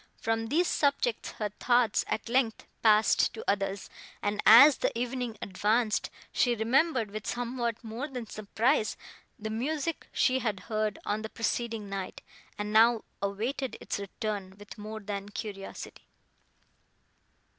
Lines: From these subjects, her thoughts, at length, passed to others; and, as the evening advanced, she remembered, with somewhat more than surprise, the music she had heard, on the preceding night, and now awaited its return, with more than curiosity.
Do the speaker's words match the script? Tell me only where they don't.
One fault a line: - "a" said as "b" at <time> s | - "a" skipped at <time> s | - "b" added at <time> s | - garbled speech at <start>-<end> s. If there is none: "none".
none